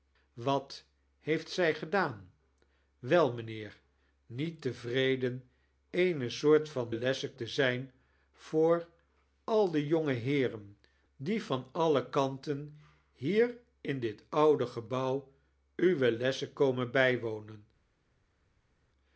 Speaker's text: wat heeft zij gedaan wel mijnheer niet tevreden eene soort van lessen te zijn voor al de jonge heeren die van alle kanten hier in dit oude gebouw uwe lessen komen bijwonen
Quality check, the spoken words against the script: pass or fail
pass